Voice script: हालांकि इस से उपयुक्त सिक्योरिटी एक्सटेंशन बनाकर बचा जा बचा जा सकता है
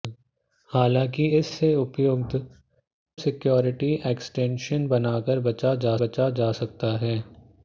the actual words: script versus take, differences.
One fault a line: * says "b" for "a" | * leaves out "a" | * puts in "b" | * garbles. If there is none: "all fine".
all fine